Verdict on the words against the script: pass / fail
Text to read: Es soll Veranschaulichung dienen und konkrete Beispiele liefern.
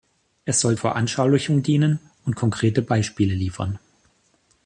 pass